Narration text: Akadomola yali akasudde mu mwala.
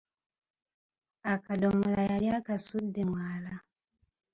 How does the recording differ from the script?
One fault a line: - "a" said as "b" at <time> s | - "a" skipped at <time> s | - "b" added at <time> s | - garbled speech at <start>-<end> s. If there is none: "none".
- "mu" skipped at 3.0 s